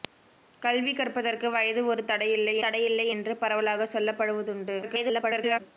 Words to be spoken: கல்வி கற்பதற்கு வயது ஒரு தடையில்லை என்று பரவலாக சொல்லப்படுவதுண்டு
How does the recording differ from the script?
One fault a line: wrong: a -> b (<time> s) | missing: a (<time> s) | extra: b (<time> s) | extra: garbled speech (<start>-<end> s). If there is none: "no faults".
extra: தடையில்லை (2.6 s)
extra: garbled speech (4.8-5.6 s)